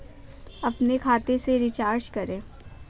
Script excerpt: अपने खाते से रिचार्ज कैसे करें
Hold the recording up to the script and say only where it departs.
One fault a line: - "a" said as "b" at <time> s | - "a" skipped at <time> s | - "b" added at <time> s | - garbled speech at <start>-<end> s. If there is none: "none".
- "कैसे" skipped at 2.1 s